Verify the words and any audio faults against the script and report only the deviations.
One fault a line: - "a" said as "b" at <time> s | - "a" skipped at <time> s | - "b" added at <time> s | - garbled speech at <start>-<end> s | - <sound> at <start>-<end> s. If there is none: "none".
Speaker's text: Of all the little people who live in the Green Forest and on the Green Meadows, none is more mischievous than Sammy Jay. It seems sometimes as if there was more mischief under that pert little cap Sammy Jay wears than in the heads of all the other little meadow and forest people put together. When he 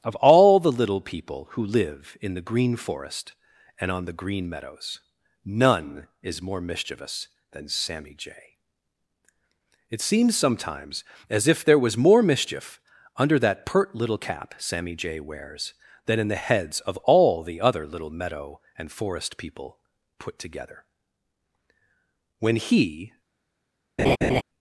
- laugh at 24.0-24.4 s